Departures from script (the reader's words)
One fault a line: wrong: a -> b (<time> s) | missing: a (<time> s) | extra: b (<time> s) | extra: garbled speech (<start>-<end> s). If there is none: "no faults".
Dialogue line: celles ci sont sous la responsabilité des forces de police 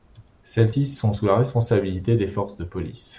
no faults